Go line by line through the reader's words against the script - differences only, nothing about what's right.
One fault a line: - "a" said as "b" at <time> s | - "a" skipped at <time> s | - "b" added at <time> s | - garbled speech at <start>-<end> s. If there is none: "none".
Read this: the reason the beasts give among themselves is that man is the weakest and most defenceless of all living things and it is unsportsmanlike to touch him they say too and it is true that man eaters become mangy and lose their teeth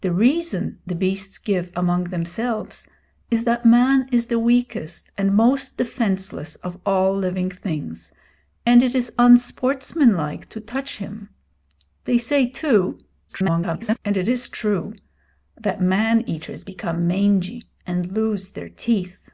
- garbled speech at 13.3-14.0 s